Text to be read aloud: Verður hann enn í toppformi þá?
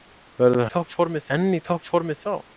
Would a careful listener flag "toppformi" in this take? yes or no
no